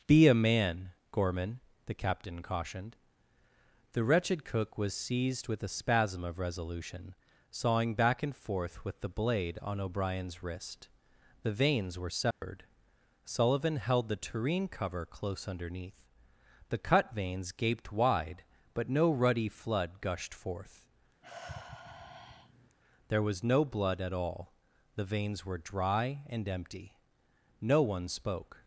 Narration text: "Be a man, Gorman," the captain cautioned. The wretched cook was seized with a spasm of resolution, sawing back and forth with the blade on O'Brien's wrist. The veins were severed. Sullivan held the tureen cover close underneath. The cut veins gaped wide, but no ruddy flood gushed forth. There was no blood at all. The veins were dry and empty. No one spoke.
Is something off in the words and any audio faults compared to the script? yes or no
yes